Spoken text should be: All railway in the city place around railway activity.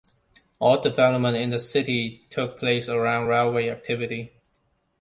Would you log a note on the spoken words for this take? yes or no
yes